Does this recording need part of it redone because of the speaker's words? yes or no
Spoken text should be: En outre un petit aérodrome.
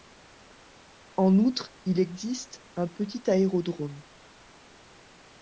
yes